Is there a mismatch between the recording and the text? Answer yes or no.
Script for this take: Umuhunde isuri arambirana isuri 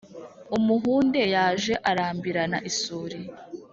yes